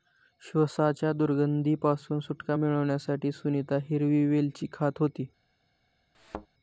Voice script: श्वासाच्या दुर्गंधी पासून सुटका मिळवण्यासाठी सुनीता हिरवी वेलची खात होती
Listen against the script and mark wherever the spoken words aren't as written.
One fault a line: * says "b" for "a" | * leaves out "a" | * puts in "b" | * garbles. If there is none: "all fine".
all fine